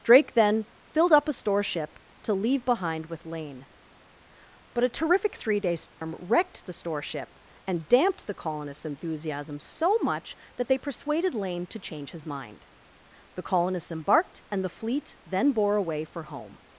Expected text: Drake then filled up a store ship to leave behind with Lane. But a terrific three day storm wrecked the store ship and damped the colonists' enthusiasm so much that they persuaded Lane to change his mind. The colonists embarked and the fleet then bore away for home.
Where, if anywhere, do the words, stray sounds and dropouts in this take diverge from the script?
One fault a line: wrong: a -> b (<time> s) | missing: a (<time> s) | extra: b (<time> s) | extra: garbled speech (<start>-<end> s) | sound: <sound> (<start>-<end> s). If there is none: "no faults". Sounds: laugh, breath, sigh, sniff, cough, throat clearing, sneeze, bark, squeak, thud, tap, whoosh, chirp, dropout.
sound: dropout (5.9-6.0 s)